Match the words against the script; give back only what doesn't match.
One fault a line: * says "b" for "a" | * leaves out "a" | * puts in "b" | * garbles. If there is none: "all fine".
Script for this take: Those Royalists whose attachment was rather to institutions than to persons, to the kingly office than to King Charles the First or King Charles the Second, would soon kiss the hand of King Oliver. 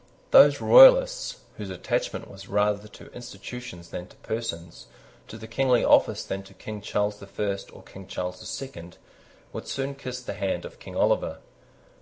all fine